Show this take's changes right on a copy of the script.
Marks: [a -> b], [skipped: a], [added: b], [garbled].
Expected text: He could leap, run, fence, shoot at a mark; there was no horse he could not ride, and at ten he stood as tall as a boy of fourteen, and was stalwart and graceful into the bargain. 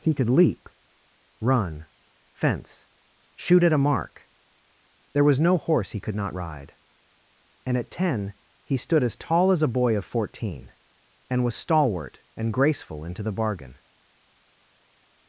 He could leap, run, fence, shoot at a mark; there was no horse he could not ride, and at ten he stood as tall as a boy of fourteen, and was stalwart and graceful into the bargain.